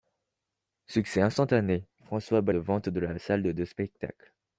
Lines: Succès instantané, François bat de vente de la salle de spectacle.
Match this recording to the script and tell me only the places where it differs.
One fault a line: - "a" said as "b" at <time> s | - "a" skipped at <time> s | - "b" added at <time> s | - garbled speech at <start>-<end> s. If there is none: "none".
none